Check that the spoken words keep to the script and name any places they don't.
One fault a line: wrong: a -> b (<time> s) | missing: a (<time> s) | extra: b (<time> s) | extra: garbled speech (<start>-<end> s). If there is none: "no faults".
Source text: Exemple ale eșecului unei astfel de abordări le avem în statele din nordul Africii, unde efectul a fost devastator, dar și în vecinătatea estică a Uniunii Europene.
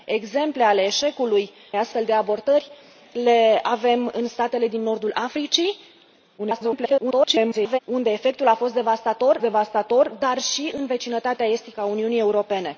missing: unei (1.5 s)
extra: garbled speech (6.4-7.8 s)
extra: devastator (9.4 s)